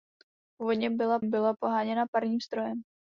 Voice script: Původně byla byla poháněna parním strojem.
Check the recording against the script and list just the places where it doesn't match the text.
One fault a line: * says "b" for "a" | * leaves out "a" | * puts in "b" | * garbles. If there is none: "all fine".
all fine